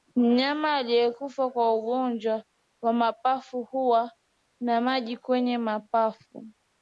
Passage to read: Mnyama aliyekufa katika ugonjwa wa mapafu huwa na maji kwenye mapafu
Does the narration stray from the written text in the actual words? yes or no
yes